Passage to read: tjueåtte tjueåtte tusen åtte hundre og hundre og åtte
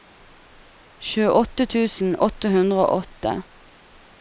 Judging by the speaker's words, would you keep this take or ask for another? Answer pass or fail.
fail